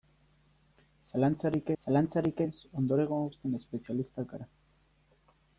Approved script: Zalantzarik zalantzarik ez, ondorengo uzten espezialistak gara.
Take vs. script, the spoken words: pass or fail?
pass